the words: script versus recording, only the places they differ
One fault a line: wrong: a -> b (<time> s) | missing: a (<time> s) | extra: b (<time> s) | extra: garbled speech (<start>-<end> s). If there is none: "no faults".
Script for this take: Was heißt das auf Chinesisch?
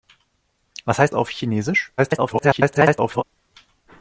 missing: das (1.1 s)
extra: garbled speech (2.0-3.2 s)